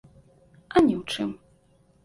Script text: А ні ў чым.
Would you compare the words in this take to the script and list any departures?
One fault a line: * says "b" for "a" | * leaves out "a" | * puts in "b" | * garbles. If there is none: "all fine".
all fine